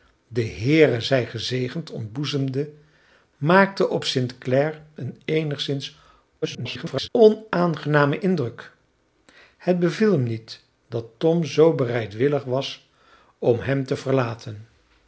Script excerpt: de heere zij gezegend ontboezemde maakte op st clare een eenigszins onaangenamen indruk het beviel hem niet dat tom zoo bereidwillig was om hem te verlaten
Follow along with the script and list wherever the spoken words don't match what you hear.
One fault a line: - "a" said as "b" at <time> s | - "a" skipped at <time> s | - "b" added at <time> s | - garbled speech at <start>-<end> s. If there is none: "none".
- garbled speech at 6.4-7.1 s